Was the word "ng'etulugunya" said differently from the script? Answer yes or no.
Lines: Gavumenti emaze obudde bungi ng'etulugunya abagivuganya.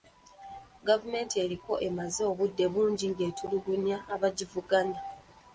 no